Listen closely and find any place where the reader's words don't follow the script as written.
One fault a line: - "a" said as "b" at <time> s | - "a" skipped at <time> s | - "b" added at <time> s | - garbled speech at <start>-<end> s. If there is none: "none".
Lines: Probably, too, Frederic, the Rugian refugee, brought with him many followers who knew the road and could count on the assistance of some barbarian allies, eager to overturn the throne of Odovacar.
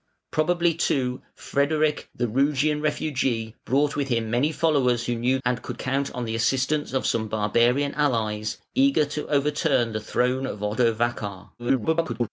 - "the road" skipped at 5.4 s
- garbled speech at 11.6-12.3 s